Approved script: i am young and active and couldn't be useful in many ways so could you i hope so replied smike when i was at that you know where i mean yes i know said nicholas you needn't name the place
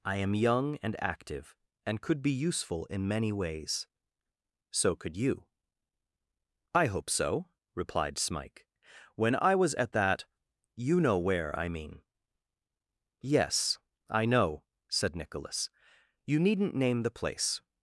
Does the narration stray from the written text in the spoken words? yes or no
yes